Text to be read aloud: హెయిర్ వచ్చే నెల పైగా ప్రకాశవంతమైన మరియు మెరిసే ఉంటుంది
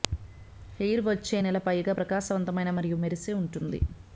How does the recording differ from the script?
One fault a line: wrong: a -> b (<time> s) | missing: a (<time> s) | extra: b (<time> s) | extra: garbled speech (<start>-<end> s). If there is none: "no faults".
no faults